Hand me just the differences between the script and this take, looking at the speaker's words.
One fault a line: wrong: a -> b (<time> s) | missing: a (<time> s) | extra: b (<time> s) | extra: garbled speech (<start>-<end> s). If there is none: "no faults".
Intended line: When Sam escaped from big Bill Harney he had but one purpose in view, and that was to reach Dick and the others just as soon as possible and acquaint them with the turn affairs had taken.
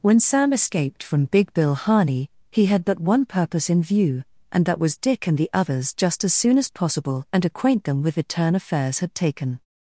missing: to reach (5.0 s)